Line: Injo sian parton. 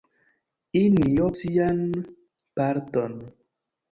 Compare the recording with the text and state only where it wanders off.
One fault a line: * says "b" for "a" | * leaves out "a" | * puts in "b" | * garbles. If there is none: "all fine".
all fine